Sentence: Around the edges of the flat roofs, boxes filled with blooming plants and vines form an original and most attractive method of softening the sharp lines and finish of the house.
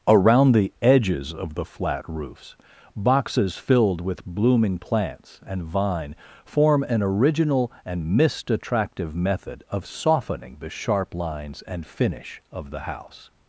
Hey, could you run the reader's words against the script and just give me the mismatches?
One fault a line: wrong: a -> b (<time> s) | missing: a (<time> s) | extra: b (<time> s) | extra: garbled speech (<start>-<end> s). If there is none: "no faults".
wrong: vines -> vine (5.6 s)
wrong: most -> mist (8.2 s)